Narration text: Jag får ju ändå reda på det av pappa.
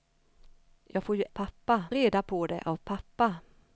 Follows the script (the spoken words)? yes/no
no